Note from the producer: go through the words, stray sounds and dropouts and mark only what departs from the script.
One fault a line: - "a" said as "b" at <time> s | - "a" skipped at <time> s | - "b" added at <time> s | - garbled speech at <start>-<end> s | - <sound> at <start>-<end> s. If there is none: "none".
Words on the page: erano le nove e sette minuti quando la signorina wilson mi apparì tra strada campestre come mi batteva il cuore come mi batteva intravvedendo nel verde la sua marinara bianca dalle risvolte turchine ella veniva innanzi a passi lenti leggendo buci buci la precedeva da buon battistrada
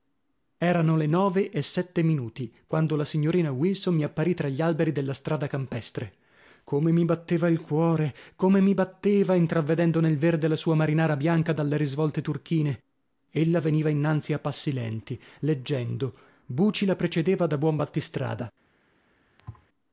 - "gli alberi della" added at 4.5 s
- "buci" skipped at 16.9 s
- thud at 19.4-19.7 s